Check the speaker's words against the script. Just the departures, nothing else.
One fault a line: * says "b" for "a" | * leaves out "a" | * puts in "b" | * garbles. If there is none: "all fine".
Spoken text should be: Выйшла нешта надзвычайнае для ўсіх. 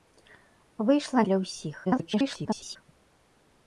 * leaves out "нешта надзвычайнае"
* garbles